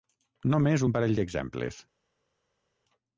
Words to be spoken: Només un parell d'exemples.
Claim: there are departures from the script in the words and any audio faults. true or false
false